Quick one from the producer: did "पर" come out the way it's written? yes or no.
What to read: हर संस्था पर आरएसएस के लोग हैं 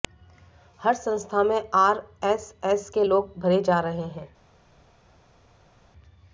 no